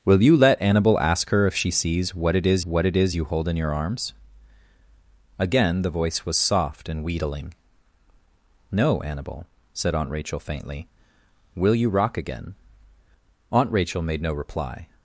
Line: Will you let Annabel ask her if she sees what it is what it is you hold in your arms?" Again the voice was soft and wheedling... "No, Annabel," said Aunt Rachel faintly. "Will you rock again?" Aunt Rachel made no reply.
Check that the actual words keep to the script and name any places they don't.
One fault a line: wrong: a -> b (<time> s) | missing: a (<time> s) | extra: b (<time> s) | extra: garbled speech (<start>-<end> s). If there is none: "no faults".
no faults